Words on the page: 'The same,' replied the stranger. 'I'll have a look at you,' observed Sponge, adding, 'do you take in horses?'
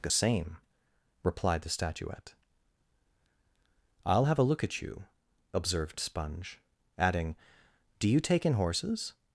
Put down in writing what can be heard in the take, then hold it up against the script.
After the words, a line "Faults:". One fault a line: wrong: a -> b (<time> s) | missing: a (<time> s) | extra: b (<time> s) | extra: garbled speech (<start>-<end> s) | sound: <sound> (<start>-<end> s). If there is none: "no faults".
'The same,' replied the statuette. 'I'll have a look at you,' observed Sponge, adding, 'do you take in horses?'
Faults:
wrong: stranger -> statuette (1.7 s)